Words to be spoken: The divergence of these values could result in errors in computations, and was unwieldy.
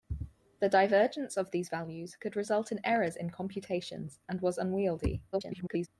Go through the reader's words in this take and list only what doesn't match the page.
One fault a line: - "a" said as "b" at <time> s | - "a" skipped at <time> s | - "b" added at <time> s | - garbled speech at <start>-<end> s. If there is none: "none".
- garbled speech at 5.3-5.9 s